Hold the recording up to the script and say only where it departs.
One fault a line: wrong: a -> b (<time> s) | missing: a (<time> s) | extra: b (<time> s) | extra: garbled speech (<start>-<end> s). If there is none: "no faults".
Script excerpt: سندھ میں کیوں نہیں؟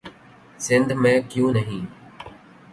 no faults